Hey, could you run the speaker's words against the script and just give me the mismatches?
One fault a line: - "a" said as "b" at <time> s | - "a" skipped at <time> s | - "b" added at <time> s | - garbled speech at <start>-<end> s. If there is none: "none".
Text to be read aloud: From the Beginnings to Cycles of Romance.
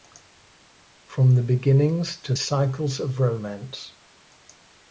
none